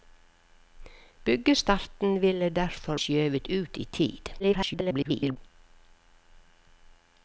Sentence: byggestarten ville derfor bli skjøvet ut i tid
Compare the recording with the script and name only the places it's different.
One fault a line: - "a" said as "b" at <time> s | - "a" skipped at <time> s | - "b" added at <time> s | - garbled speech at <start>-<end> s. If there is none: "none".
- "bli" skipped at 3.0 s
- garbled speech at 4.4-5.4 s